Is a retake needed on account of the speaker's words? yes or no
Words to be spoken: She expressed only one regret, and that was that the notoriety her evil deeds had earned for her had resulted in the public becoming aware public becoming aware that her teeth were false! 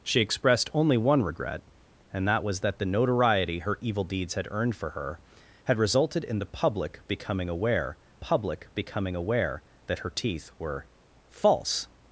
no